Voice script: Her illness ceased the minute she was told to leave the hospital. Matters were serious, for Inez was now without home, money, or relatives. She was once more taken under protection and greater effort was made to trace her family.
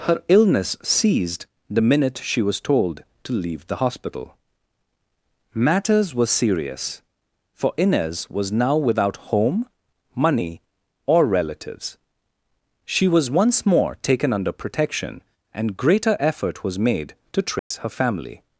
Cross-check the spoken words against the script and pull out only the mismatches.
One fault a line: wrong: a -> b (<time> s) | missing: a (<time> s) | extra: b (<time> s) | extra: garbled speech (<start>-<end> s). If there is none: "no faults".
no faults